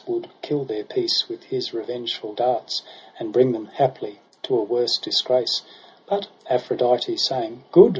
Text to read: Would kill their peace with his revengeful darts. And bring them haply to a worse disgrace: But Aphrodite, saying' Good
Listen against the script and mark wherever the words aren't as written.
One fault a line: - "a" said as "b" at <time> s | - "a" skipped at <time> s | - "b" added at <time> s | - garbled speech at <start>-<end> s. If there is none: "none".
none